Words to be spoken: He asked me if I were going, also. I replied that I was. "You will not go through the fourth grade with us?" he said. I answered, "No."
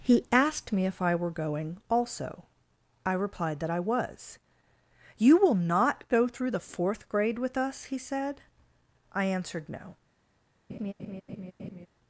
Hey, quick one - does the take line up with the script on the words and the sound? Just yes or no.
no